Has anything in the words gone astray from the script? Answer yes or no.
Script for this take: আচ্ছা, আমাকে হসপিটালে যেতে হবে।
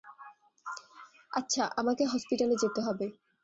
no